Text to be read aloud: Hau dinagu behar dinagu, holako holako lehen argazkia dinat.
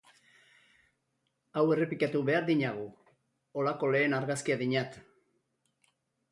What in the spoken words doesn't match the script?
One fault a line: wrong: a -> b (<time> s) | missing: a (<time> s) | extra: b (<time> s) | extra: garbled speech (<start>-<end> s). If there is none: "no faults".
wrong: dinagu -> errepikatu (1.8 s)
missing: holako (3.9 s)